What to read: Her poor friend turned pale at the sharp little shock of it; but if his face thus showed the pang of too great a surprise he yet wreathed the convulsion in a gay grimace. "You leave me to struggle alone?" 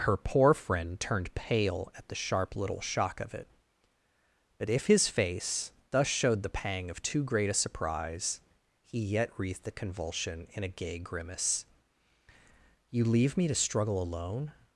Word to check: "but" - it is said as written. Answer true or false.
true